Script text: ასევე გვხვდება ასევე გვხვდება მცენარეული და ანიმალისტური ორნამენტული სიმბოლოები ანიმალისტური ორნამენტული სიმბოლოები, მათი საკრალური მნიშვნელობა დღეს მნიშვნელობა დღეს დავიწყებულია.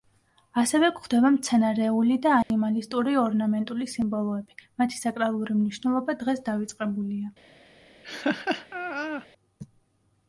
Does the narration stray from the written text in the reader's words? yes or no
yes